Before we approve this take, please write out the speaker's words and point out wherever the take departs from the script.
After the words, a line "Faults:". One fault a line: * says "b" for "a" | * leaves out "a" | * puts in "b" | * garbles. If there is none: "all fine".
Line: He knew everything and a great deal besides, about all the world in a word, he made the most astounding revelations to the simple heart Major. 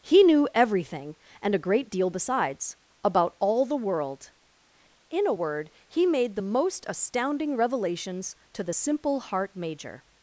He knew everything and a great deal besides, about all the world in a word, he made the most astounding revelations to the simple heart Major.
Faults:
all fine